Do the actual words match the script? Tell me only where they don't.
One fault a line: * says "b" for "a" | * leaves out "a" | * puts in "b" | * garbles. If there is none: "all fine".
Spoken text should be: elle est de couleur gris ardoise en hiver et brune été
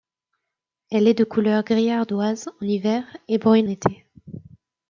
all fine